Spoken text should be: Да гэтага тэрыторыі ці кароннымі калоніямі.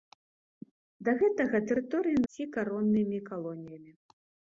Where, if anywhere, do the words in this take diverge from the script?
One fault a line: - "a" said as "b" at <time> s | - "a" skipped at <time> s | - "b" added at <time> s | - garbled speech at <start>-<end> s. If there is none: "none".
none